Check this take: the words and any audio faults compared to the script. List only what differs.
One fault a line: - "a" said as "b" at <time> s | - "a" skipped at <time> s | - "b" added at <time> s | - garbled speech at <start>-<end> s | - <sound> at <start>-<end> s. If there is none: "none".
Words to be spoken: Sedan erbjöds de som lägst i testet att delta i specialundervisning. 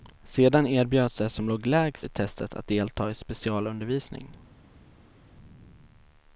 - "låg" added at 1.5 s